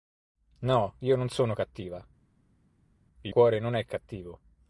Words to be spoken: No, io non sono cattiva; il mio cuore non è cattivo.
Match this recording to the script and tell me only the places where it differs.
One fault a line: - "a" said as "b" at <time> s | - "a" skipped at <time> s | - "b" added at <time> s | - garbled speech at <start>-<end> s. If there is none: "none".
- "mio" skipped at 3.3 s